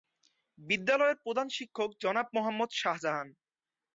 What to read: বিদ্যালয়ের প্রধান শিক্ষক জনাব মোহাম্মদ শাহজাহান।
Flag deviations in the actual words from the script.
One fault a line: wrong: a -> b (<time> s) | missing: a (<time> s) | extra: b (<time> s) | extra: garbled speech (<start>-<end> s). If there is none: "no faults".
no faults